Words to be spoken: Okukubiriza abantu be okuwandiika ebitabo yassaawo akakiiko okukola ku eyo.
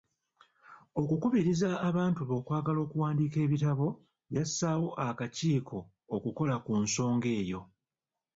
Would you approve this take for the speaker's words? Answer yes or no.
no